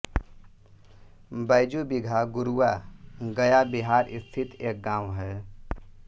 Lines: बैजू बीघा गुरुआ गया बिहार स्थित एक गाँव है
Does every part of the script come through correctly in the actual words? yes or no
yes